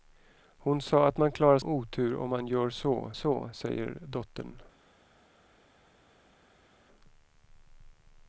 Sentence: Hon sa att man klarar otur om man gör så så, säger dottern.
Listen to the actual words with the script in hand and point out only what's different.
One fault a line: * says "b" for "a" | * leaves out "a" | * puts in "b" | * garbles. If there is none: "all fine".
all fine